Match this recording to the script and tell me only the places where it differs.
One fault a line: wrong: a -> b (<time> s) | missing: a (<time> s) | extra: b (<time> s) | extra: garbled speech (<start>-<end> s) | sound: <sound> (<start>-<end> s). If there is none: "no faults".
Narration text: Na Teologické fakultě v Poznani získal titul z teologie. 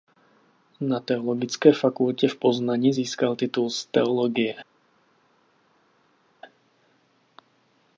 no faults